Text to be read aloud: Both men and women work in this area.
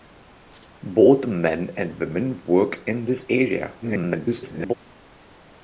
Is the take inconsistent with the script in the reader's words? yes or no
yes